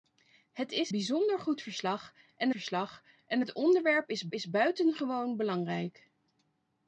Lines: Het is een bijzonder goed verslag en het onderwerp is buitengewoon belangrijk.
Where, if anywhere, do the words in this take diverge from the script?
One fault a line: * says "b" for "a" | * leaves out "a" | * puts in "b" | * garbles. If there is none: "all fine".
* leaves out "een"
* puts in "verslag en"
* puts in "is"